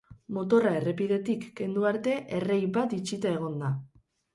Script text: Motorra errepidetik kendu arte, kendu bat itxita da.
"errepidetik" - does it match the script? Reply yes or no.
yes